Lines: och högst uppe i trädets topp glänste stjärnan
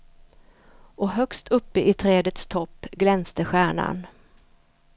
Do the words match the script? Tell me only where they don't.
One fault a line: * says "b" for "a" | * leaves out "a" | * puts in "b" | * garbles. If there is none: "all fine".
all fine